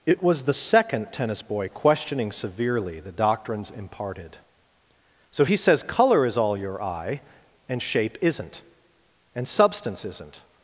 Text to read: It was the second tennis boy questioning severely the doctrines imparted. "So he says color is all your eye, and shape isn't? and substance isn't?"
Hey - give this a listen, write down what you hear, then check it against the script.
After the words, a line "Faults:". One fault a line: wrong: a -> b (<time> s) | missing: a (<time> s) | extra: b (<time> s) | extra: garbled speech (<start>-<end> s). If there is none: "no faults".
It was the second tennis boy questioning severely the doctrines imparted. "So he says color is all your eye, and shape isn't? and substance isn't?"
Faults:
no faults